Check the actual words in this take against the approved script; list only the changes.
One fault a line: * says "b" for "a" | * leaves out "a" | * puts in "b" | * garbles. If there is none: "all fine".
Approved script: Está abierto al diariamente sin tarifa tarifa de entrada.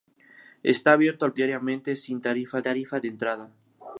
all fine